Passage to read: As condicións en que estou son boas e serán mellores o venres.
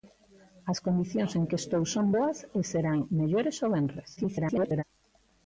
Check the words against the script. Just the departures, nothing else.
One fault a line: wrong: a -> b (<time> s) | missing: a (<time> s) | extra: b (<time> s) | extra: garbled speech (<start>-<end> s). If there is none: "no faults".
extra: garbled speech (4.2-4.8 s)